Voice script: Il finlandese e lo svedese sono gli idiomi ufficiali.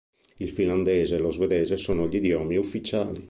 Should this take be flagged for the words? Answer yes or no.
no